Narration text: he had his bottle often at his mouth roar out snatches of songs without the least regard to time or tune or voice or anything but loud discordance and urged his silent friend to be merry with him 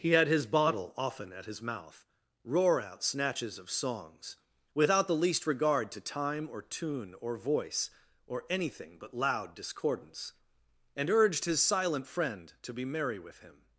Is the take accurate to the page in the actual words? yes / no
yes